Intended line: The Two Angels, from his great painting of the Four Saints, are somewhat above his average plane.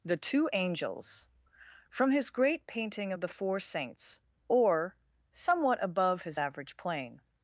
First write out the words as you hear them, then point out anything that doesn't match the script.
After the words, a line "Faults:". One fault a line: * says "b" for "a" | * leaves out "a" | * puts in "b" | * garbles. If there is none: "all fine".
The Two Angels, from his great painting of the Four Saints, or somewhat above his average plane.
Faults:
* says "or" for "are"